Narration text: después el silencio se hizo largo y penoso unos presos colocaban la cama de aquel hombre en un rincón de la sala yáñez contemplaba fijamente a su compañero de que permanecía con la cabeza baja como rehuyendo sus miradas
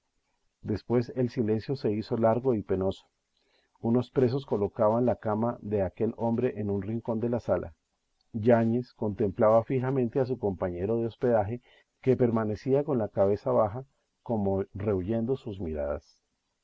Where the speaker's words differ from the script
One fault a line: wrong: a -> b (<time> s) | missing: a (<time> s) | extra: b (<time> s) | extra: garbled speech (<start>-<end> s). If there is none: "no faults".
extra: hospedaje (11.1 s)